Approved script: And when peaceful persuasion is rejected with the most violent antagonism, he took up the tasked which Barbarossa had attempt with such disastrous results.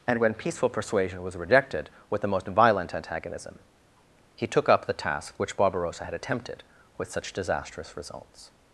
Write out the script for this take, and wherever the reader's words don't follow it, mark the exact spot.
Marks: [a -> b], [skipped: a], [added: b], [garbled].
And when peaceful persuasion [is -> was] rejected with the most violent antagonism, he took up the [tasked -> task] which Barbarossa had [attempt -> attempted] with such disastrous results.